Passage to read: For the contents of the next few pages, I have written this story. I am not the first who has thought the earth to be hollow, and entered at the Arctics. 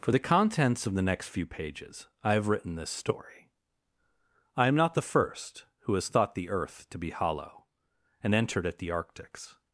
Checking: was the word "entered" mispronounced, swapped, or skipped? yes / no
no